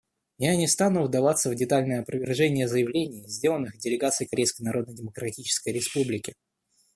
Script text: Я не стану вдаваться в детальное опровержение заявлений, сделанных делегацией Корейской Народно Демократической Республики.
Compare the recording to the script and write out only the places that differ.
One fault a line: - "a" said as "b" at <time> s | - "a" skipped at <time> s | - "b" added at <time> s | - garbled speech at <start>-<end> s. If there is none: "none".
none